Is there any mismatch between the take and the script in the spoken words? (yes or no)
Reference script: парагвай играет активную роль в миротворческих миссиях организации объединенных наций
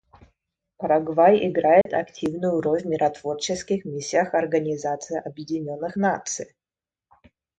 no